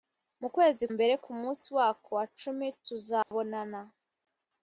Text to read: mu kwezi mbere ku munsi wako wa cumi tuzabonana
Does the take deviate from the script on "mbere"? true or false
false